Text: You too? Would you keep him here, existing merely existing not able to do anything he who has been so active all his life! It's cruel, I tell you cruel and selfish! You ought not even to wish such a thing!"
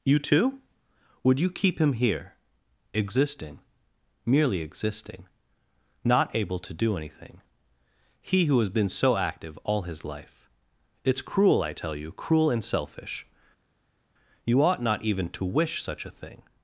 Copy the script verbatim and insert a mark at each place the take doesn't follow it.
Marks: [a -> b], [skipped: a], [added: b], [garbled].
You too? Would you keep him here, existing merely existing not able to do anything he who has been so active all his life! It's cruel, I tell you cruel and selfish! You ought not even to wish such a thing!"